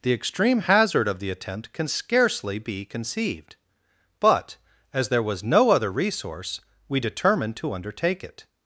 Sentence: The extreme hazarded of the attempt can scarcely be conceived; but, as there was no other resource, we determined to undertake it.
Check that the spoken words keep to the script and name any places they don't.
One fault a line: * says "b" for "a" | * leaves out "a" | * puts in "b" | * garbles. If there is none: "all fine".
* says "hazard" for "hazarded"